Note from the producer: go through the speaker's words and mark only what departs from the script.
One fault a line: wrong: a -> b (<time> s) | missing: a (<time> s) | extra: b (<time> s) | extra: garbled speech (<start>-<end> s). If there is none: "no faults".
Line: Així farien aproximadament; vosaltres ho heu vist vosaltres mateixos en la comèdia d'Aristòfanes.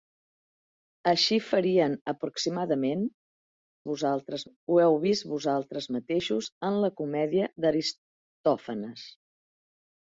no faults